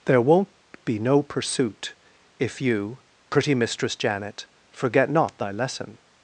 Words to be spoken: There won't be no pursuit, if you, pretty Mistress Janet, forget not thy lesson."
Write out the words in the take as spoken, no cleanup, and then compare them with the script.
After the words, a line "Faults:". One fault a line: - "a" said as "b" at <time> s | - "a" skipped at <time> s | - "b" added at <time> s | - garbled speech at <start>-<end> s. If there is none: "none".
There won't be no pursuit, if you, pretty Mistress Janet, forget not thy lesson."
Faults:
none